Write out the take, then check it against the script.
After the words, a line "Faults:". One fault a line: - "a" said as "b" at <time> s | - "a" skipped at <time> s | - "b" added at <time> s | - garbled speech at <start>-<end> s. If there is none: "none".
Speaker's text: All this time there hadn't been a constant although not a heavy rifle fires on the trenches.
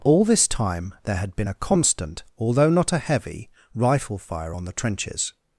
All this time there had been a constant although not a heavy rifle fire on the trenches.
Faults:
- "hadn't" said as "had" at 1.2 s
- "fires" said as "fire" at 4.2 s